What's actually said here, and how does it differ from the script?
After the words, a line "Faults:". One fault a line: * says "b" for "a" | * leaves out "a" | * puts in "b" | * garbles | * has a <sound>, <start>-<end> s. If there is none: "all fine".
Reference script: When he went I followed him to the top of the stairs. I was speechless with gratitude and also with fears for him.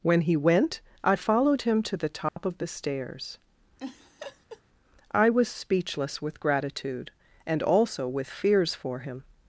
When he went I followed him to the top of the stairs. I was speechless with gratitude and also with fears for him.
Faults:
* has a dropout, 2.3-2.4 s
* has a laugh, 3.8-4.6 s